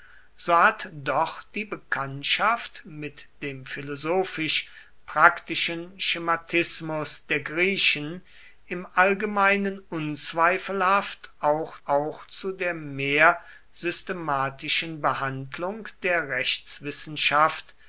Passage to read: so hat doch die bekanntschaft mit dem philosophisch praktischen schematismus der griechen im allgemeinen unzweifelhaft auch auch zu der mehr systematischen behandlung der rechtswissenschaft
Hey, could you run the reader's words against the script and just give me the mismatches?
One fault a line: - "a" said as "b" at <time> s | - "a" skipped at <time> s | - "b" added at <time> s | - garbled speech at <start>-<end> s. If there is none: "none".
none